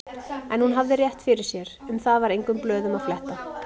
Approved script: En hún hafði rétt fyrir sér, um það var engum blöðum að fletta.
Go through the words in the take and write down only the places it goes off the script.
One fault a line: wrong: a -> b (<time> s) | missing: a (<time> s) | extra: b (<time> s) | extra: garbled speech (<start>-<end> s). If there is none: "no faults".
no faults